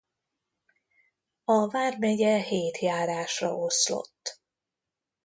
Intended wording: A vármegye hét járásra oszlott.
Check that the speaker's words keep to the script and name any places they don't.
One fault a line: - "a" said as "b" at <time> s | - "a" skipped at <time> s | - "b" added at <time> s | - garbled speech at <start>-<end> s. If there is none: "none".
none